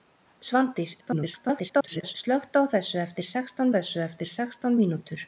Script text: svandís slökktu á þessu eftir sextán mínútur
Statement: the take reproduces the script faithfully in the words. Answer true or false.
false